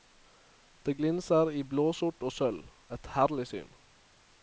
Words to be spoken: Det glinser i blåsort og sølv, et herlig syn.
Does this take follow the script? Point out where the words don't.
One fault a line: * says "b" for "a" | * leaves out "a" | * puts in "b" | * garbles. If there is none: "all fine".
all fine